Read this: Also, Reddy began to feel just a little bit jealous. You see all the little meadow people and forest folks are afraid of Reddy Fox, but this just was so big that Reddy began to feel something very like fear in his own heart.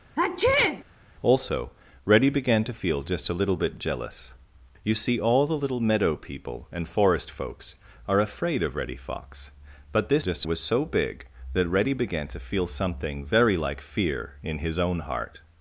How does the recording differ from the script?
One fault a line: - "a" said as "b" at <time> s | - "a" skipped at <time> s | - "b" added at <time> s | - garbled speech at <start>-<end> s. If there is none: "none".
none